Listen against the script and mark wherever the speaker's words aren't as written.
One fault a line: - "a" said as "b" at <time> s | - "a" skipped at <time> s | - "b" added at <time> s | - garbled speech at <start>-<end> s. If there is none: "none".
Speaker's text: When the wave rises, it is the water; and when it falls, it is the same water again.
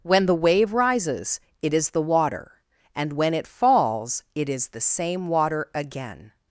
none